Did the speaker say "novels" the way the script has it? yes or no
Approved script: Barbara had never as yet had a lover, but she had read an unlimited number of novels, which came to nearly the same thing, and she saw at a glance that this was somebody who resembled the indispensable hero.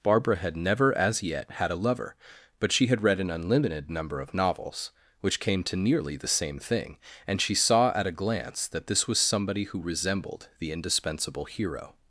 yes